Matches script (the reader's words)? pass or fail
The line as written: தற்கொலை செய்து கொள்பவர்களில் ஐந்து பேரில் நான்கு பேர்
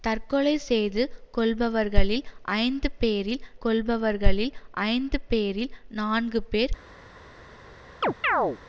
fail